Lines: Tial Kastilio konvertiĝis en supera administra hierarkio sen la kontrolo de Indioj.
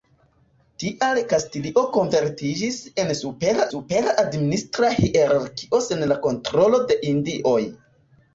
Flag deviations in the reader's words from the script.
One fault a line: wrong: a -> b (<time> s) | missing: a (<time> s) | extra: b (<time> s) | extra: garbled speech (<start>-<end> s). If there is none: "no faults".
extra: supera (3.7 s)